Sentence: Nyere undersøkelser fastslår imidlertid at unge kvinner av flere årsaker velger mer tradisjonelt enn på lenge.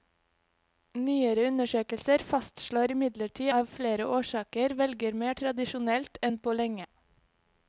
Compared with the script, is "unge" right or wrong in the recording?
wrong